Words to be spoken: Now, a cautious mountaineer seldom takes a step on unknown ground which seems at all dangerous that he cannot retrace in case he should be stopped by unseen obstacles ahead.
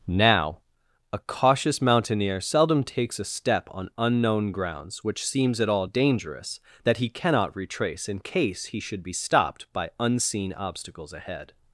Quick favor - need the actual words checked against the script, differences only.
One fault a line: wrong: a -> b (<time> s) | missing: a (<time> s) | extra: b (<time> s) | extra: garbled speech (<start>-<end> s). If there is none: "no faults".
wrong: ground -> grounds (4.5 s)